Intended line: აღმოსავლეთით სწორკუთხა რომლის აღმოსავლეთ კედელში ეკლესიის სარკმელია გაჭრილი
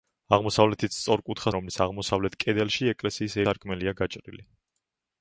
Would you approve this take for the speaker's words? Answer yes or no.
yes